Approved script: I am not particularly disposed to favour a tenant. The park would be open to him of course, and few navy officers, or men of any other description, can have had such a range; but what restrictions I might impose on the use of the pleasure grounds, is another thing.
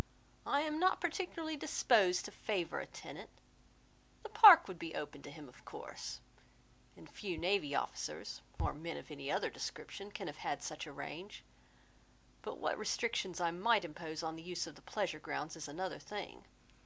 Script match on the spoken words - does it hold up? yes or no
yes